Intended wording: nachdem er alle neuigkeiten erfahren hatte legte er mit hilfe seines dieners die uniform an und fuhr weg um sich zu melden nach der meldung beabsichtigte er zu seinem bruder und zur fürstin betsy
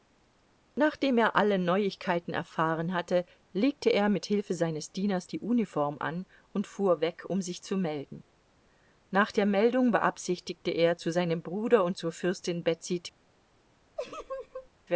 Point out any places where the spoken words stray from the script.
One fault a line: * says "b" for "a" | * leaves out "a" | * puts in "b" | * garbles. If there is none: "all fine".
all fine